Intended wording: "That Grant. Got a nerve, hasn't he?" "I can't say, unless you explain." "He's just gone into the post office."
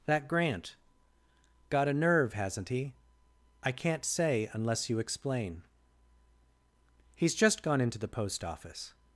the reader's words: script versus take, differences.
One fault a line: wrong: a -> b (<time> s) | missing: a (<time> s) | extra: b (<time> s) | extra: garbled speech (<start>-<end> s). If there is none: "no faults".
no faults